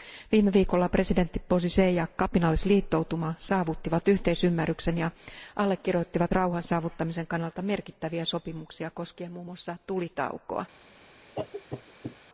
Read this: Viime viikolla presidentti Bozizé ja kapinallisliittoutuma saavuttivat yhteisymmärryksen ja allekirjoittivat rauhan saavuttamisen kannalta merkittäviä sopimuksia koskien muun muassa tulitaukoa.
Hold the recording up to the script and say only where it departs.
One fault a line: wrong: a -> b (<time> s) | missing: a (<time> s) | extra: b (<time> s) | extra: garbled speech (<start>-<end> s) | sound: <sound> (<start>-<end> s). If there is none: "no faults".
sound: cough (11.4-12.2 s)